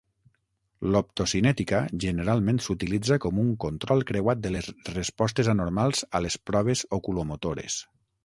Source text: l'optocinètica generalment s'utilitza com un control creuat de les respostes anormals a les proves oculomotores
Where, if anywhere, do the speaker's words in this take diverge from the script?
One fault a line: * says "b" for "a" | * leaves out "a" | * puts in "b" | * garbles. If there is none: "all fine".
all fine